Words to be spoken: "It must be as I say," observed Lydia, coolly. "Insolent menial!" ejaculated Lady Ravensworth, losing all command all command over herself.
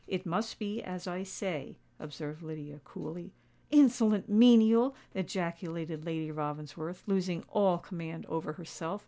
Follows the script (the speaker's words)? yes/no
no